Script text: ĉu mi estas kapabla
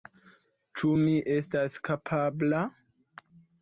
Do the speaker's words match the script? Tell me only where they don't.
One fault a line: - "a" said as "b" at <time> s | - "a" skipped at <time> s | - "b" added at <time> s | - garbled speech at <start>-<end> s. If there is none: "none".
none